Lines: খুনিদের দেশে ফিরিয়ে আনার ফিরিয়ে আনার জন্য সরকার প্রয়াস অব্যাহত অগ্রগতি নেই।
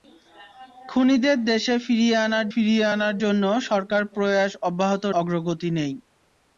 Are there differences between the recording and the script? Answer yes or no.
no